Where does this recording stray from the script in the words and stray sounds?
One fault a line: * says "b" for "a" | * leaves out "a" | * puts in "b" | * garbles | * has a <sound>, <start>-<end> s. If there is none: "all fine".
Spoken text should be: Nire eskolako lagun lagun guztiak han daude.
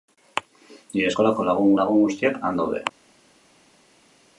all fine